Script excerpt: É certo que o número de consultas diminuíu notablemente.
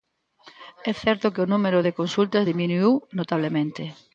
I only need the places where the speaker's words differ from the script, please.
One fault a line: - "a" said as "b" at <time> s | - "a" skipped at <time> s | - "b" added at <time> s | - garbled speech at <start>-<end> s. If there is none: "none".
none